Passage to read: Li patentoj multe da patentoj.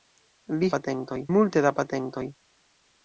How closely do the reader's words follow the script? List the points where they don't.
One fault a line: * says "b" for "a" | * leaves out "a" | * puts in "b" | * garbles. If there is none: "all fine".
all fine